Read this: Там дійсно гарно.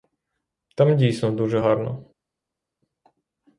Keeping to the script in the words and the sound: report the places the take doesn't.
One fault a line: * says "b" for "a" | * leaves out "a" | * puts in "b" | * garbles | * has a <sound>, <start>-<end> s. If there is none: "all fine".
* puts in "дуже"